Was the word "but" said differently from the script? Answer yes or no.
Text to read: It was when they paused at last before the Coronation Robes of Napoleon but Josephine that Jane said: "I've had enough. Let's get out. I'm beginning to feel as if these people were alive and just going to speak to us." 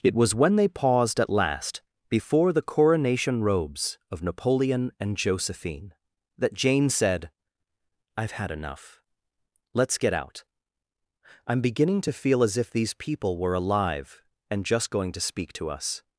yes